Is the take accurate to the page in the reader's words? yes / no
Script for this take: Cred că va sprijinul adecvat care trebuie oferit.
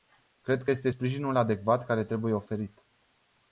no